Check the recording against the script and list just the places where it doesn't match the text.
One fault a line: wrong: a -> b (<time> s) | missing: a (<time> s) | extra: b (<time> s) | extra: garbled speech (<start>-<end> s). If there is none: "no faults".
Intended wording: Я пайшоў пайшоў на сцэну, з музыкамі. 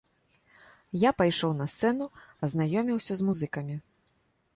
missing: пайшоў (1.5 s)
extra: пазнаёміўся (2.4 s)